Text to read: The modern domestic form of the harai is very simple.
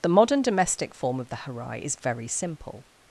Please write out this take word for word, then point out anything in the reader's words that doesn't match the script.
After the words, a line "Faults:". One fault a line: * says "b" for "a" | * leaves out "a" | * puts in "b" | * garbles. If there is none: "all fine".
The modern domestic form of the harai is very simple.
Faults:
all fine